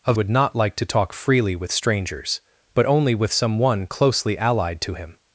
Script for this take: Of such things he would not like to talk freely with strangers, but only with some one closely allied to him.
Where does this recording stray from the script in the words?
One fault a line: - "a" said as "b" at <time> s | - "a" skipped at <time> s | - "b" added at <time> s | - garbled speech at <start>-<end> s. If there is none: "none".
- "such things he" skipped at 0.2 s